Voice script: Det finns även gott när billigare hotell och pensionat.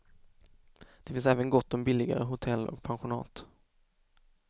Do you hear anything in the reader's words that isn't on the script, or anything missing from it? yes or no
yes